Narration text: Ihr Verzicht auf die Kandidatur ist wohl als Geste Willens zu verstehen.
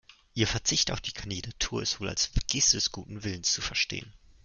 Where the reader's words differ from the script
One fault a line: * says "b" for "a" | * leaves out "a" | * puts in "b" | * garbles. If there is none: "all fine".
* puts in "des guten"